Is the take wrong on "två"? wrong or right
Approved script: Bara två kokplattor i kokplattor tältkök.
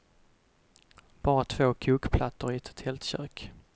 right